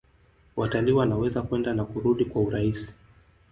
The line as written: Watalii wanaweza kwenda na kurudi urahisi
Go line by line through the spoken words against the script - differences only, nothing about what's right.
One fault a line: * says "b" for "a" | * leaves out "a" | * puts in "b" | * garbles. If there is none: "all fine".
* puts in "kwa"